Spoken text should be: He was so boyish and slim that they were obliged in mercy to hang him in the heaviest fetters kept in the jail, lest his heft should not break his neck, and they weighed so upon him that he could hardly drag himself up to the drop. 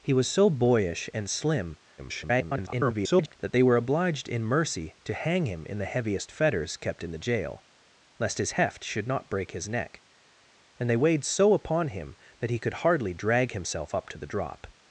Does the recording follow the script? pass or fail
fail